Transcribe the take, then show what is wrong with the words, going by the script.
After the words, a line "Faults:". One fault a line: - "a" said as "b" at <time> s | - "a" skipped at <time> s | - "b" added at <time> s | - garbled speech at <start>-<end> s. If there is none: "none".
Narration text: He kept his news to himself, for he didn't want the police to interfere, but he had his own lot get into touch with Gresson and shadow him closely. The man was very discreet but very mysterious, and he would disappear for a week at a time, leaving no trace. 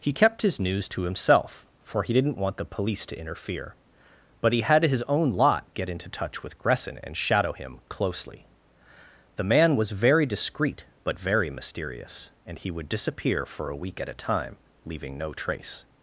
He kept his news to himself, for he didn't want the police to interfere, but he had his own lot get into touch with Gresson and shadow him closely. The man was very discreet but very mysterious, and he would disappear for a week at a time, leaving no trace.
Faults:
none